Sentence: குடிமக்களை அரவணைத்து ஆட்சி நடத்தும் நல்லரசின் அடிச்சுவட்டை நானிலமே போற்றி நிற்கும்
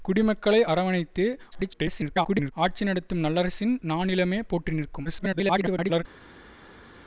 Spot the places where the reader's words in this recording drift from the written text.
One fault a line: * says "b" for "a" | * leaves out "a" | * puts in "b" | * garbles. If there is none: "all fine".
* garbles
* leaves out "அடிச்சுவட்டை"
* garbles